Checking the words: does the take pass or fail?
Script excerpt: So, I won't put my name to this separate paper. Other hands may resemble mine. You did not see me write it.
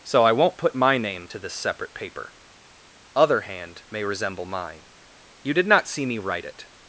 fail